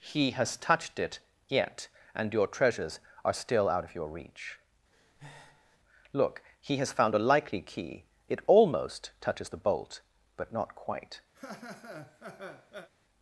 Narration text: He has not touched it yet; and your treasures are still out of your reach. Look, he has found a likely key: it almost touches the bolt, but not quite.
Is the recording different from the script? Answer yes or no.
yes